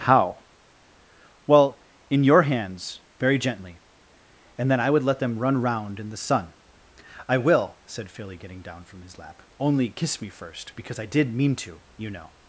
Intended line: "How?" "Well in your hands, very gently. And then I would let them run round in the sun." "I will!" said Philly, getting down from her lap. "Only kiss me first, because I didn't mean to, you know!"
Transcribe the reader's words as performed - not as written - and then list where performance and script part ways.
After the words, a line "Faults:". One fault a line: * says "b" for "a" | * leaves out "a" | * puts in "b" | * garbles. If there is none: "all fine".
"How?" "Well in your hands, very gently. And then I would let them run round in the sun." "I will!" said Philly, getting down from his lap. "Only kiss me first, because I did mean to, you know!"
Faults:
* says "his" for "her"
* says "did" for "didn't"